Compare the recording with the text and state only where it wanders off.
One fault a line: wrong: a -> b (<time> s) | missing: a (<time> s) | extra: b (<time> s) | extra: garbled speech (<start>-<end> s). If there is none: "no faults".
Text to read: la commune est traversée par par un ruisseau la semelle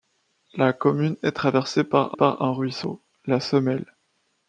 no faults